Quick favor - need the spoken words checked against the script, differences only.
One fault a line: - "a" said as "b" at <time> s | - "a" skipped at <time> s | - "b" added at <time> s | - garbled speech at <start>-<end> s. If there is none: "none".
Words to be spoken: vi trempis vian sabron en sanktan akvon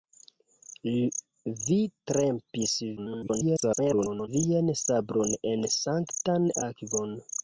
- garbled speech at 3.0-4.3 s